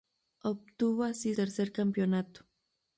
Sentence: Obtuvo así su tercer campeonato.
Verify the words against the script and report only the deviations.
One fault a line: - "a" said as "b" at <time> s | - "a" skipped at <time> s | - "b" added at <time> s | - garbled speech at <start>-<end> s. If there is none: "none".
- "su" skipped at 1.4 s